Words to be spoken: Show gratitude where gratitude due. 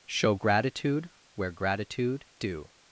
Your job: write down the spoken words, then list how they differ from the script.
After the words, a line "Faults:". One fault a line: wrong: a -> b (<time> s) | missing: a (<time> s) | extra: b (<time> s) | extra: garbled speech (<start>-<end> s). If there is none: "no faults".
Show gratitude where gratitude due.
Faults:
no faults